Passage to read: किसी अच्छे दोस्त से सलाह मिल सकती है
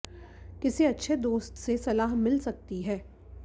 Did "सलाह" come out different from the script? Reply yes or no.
no